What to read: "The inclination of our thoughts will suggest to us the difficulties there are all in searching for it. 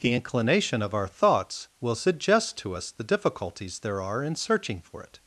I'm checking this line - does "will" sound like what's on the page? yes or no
yes